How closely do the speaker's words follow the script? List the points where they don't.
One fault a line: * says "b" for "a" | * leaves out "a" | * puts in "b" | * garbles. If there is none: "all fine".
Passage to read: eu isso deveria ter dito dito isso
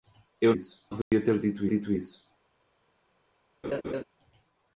all fine